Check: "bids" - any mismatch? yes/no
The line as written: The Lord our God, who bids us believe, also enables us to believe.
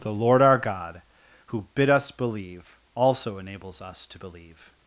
yes